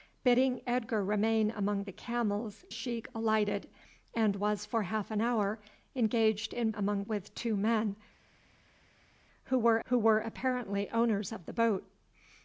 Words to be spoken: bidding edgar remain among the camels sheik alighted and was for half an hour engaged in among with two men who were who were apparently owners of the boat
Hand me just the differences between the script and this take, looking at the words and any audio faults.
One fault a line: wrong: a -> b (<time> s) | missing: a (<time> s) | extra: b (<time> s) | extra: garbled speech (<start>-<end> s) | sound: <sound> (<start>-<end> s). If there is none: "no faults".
no faults